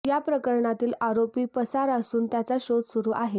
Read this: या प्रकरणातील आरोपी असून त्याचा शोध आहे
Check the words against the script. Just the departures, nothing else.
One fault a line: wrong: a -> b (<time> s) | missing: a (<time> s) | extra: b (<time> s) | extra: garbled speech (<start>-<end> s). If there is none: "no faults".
extra: पसार (1.4 s)
extra: सुरू (2.8 s)